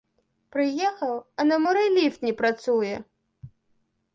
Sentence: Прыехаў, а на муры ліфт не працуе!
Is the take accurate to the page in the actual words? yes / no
yes